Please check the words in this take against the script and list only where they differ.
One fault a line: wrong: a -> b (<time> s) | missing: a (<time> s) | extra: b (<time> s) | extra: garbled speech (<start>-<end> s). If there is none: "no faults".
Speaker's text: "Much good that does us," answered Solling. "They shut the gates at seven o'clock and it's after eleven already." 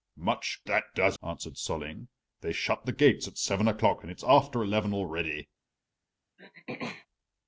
missing: good (0.6 s)
missing: us (1.2 s)